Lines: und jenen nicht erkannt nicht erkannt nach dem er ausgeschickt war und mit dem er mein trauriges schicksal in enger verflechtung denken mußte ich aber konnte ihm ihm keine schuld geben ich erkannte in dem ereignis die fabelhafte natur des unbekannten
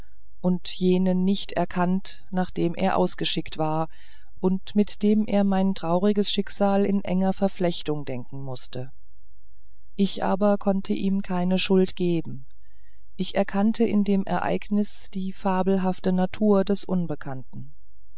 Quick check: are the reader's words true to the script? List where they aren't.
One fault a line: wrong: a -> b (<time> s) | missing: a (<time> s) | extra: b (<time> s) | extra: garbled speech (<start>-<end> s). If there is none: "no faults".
missing: nicht erkannt (2.2 s)
missing: ihm (11.2 s)